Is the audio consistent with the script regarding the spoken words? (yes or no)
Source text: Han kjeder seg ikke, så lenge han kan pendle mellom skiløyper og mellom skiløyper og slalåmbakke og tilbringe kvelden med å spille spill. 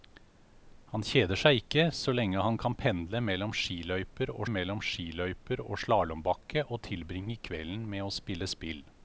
yes